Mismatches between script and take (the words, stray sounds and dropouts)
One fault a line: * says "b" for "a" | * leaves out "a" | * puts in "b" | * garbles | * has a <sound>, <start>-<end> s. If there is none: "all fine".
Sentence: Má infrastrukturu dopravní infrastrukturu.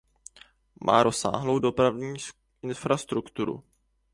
* says "rozsáhlou" for "infrastrukturu"